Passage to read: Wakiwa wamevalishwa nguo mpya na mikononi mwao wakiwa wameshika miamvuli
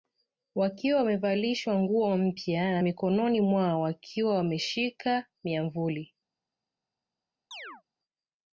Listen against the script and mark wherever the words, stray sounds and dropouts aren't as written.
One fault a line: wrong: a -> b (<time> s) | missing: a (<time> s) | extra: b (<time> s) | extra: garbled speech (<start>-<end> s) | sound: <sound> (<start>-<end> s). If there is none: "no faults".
sound: chirp (7.5-7.8 s)